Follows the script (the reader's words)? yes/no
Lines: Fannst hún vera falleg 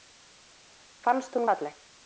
no